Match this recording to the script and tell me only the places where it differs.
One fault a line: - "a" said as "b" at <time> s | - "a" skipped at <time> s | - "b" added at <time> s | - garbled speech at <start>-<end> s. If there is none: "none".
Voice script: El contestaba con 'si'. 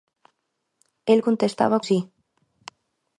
- "con" skipped at 1.8 s